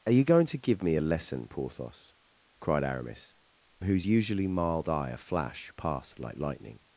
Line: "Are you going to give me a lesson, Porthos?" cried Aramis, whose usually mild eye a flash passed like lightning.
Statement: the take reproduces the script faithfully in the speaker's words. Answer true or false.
true